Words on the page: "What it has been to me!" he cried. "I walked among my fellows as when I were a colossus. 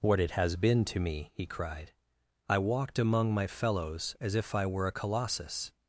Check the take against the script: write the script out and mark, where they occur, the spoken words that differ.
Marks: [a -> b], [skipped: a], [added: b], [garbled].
"What it has been to me!" he cried. "I walked among my fellows as [when -> if] I were a colossus.